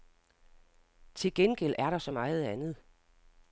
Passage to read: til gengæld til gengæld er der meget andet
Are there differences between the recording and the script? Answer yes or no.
yes